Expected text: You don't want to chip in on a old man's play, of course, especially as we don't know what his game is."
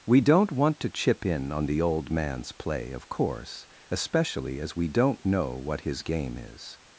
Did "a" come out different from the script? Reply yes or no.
yes